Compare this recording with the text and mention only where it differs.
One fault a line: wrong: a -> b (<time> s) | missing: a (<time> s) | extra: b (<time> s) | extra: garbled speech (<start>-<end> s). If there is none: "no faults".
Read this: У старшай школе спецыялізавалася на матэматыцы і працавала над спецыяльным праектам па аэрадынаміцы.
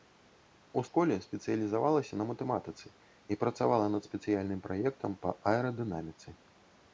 missing: старшай (0.8 s)